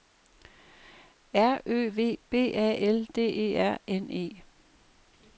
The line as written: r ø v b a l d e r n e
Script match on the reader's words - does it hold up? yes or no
yes